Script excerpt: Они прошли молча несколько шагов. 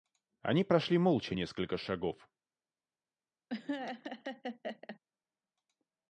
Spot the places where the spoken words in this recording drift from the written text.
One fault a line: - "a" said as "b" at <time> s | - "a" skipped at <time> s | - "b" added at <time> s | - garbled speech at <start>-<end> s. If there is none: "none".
none